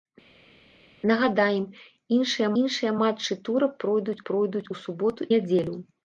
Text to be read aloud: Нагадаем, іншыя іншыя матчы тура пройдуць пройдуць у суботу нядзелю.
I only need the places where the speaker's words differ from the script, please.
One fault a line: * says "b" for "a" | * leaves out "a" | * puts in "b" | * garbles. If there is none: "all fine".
all fine